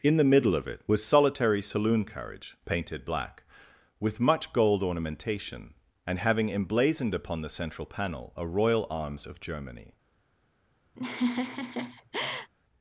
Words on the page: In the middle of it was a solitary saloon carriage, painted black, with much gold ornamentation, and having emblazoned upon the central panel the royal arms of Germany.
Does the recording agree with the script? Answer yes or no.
no